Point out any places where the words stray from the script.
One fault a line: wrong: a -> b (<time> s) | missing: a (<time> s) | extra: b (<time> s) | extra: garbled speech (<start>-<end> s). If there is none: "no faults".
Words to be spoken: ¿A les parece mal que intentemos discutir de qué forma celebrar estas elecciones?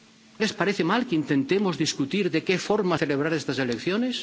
no faults